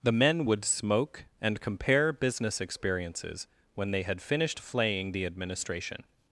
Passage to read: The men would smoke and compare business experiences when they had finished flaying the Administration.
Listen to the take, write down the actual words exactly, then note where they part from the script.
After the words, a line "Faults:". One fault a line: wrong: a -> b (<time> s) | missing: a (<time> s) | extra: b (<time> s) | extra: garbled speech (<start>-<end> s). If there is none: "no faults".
The men would smoke and compare business experiences when they had finished flaying the Administration.
Faults:
no faults